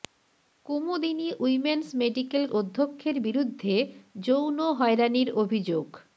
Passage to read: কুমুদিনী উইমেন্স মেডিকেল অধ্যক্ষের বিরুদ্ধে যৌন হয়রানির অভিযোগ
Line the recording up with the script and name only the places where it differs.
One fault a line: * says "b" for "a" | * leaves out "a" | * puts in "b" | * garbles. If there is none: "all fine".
all fine